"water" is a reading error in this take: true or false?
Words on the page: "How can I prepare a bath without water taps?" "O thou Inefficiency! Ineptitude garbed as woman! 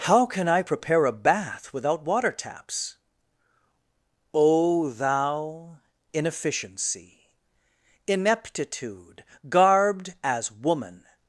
false